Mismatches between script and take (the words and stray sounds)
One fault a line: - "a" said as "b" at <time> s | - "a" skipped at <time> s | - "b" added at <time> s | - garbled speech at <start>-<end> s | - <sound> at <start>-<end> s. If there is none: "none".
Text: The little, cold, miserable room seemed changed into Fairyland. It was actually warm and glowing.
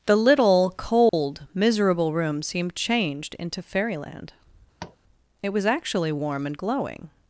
- dropout at 1.1-1.1 s
- tap at 4.8-5.0 s